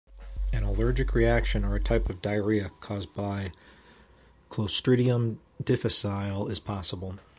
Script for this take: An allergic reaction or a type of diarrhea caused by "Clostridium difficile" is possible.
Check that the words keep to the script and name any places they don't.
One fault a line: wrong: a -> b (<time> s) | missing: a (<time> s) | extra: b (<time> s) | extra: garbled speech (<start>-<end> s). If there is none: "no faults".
no faults